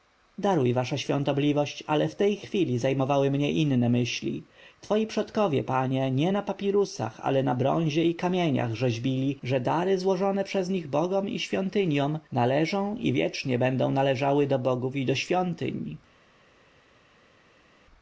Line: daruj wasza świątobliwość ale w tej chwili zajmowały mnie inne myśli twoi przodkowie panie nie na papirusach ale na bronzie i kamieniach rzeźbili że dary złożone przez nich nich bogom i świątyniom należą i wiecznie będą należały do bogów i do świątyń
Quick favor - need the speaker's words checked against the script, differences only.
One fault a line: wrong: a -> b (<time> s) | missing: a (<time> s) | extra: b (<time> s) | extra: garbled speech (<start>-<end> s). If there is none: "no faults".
missing: nich (10.9 s)